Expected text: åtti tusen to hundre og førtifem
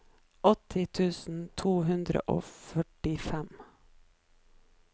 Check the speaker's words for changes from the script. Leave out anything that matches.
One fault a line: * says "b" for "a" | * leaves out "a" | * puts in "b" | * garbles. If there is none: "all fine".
all fine